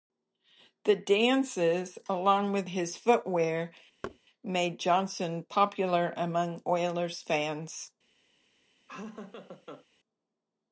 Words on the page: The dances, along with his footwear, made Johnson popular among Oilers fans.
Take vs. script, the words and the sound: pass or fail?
fail